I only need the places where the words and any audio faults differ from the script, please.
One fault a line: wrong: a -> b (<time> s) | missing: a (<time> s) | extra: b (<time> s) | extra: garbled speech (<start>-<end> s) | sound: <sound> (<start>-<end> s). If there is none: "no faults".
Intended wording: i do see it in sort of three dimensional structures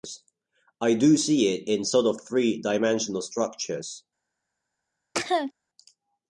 sound: cough (5.1-5.5 s)